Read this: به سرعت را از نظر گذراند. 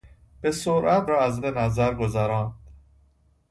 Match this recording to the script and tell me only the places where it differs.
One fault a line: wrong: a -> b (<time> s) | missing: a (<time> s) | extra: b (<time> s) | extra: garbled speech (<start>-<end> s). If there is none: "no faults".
no faults